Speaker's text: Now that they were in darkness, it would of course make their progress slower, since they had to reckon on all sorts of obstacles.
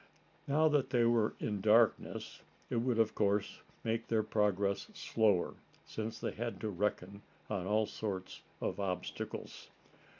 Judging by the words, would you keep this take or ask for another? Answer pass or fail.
pass